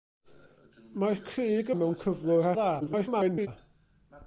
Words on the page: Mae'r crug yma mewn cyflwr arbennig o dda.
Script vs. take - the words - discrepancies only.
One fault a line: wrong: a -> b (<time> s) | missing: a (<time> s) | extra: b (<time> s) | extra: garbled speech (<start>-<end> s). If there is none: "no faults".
missing: yma (1.7 s)
missing: arbennig (2.5 s)
extra: garbled speech (2.8-3.5 s)